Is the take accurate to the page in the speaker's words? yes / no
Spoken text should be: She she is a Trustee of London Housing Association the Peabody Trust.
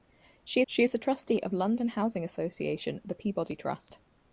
yes